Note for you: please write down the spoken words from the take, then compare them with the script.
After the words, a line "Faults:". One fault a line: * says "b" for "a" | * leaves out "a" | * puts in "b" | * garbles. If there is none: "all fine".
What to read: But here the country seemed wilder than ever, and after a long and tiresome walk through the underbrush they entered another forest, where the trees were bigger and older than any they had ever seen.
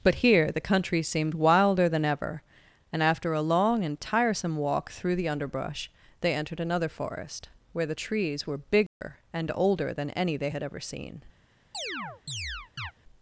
But here the country seemed wilder than ever, and after a long and tiresome walk through the underbrush they entered another forest, where the trees were bigger and older than any they had ever seen.
Faults:
all fine